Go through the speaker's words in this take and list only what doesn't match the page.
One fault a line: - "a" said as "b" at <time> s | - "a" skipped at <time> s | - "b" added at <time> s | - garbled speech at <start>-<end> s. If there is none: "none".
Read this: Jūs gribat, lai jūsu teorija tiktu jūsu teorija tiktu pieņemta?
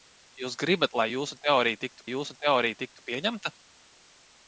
none